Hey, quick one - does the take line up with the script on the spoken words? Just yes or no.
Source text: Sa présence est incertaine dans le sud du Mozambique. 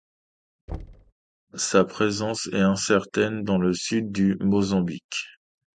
yes